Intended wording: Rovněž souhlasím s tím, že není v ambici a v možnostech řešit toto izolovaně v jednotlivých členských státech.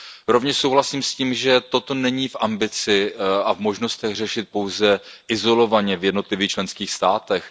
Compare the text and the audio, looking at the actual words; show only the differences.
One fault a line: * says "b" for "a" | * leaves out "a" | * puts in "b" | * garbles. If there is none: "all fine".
* puts in "toto"
* says "pouze" for "toto"